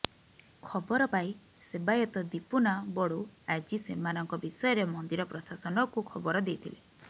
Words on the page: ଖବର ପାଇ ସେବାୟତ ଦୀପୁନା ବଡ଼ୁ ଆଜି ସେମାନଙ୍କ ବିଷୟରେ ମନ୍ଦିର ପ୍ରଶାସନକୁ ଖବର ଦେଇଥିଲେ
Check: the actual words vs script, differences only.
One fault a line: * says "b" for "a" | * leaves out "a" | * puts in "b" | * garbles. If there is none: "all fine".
all fine